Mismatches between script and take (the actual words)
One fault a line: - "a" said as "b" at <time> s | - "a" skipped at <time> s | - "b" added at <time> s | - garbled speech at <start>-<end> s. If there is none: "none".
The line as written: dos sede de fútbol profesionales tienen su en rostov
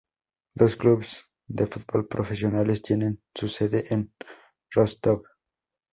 - "sede" said as "clubes" at 0.8 s
- "sede" added at 3.5 s